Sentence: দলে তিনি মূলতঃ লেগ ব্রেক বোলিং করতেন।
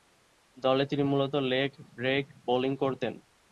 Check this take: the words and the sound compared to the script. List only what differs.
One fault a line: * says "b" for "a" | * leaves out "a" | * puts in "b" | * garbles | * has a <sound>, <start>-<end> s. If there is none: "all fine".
all fine